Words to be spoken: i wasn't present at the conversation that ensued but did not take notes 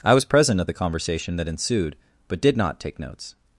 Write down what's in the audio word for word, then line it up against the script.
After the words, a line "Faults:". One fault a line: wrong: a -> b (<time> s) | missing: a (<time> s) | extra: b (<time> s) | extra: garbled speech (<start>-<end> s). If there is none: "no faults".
i was present at the conversation that ensued but did not take notes
Faults:
wrong: wasn't -> was (0.1 s)